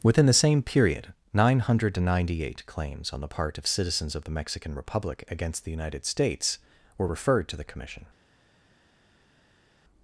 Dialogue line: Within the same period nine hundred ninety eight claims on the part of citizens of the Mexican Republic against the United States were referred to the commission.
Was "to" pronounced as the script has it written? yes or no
yes